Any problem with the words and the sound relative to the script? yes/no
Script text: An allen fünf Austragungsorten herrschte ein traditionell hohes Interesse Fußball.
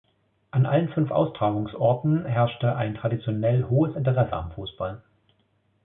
yes